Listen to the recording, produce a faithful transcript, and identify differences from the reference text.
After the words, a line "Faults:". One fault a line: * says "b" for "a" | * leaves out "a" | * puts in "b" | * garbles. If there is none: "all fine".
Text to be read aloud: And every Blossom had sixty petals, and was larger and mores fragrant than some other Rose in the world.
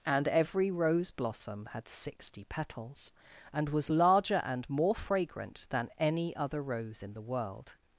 And every Rose blossom had sixty petals, and was larger and more fragrant than any other Rose in the world.
Faults:
* puts in "Rose"
* says "more" for "mores"
* says "any" for "some"